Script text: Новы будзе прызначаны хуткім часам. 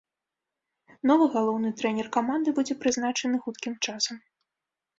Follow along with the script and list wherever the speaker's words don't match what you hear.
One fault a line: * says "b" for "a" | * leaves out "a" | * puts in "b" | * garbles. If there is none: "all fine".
* puts in "галоўны трэнер каманды"